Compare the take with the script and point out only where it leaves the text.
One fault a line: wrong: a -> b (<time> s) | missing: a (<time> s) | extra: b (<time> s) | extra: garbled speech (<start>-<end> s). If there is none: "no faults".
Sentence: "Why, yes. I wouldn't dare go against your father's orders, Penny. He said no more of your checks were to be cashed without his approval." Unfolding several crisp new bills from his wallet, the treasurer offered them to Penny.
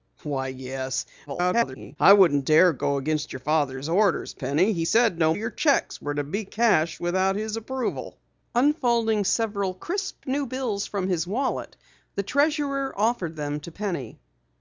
extra: garbled speech (1.3-2.0 s)
missing: more (5.3 s)